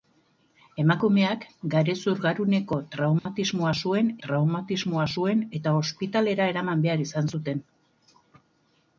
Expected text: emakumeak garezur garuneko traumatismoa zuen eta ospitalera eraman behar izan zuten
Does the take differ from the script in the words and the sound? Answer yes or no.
yes